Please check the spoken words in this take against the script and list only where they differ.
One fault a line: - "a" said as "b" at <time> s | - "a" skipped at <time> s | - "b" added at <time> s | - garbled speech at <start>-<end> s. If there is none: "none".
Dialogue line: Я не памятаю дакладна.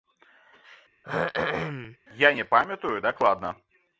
none